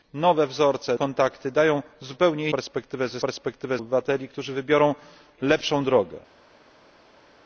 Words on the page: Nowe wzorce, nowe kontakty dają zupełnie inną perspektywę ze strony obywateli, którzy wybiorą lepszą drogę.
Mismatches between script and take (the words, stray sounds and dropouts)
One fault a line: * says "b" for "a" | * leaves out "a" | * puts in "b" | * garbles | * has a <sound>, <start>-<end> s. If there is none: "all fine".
* leaves out "nowe"
* leaves out "inną"
* says "perspektywę" for "strony"